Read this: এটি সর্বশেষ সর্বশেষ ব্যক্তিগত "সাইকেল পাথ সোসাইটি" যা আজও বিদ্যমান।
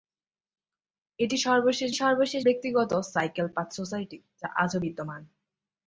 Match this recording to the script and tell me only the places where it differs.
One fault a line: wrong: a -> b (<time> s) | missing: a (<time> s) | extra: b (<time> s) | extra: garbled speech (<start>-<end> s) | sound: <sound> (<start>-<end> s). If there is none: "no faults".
no faults